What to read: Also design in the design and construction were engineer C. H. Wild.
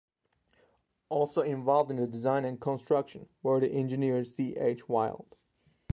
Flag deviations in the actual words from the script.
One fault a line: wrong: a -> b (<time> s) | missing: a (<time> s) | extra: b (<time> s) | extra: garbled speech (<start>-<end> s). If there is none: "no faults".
wrong: design -> involved (1.4 s)
extra: the (3.6 s)